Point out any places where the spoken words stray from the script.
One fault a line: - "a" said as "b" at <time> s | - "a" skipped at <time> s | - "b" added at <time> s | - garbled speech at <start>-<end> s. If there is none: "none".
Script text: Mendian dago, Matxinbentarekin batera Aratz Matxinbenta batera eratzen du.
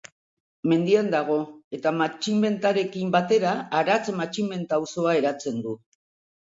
- "eta" added at 1.8 s
- "batera" said as "auzoa" at 4.8 s